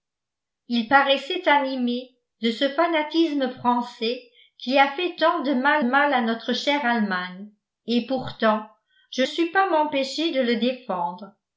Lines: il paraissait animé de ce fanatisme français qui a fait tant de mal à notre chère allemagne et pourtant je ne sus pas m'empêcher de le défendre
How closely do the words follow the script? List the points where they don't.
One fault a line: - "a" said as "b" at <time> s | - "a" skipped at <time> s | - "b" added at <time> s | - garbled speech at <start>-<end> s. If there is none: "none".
- "mal" added at 5.8 s
- "ne" skipped at 9.2 s